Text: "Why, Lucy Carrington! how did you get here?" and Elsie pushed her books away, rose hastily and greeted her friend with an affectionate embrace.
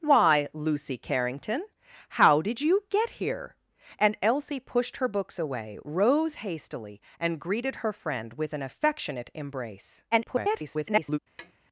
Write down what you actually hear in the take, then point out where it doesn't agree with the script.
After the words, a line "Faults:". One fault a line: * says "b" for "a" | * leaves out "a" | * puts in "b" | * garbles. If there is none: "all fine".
"Why, Lucy Carrington! how did you get here?" and Elsie pushed her books away, rose hastily and greeted her friend with an affectionate embrace. [garbled]
Faults:
* garbles